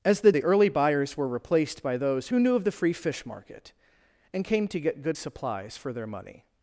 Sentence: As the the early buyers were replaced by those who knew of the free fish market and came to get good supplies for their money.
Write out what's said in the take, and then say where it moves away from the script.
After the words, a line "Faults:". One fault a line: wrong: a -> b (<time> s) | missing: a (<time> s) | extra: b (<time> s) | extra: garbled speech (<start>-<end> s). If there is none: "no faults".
As the the early buyers were replaced by those who knew of the free fish market and came to get good supplies for their money.
Faults:
no faults